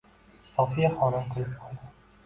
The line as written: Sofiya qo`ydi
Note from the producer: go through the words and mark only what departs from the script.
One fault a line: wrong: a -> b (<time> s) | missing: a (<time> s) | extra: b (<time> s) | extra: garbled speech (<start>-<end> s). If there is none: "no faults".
extra: xonim kulib (1.0 s)